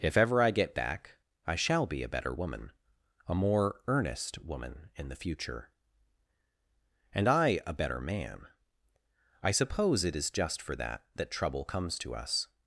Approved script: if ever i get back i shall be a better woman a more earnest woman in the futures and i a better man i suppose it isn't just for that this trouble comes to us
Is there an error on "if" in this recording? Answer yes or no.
no